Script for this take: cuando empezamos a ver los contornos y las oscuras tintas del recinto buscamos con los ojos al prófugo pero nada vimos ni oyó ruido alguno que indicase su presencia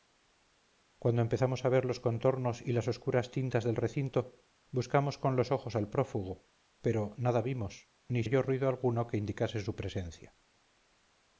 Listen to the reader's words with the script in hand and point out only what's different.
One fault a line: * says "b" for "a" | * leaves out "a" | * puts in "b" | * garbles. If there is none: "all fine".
all fine